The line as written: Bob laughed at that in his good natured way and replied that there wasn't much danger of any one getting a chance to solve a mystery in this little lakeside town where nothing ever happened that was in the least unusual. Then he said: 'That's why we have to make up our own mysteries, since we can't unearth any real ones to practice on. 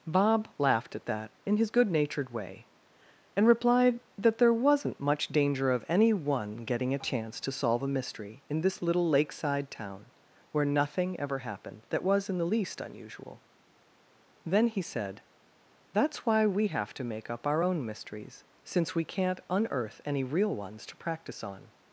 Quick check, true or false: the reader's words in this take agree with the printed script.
true